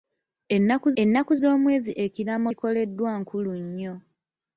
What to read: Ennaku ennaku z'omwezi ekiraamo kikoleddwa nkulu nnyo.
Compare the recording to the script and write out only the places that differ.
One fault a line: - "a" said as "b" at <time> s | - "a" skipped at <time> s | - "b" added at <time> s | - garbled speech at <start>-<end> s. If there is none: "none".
none